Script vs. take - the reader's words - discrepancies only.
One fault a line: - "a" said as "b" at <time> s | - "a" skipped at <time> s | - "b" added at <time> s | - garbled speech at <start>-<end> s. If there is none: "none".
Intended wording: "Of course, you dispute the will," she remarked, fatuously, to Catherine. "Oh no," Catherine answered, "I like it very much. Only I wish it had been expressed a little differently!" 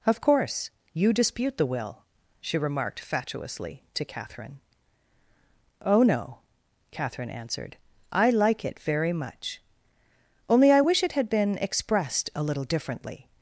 none